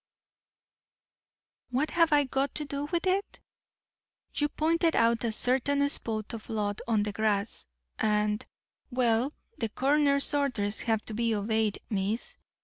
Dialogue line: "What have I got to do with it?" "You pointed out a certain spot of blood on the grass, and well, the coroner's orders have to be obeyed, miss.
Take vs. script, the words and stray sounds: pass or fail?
pass